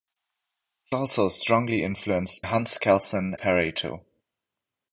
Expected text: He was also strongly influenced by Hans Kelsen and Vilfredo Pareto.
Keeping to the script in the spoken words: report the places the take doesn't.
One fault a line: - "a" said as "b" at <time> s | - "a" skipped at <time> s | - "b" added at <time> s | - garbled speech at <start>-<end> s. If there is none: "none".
- "was" skipped at 1.0 s
- "by" skipped at 2.4 s
- "and Vilfredo" skipped at 3.3 s